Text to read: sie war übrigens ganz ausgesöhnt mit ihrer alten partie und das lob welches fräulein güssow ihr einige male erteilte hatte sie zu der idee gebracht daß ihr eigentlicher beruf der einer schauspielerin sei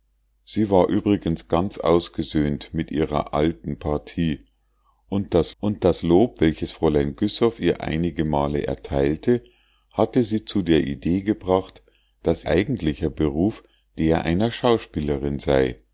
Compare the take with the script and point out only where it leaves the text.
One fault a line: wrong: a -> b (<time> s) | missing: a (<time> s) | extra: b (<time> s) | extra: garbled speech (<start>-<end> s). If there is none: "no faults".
extra: und das (5.6 s)
missing: ihr (12.5 s)